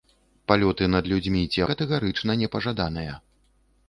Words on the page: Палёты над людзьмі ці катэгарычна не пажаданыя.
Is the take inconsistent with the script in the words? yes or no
no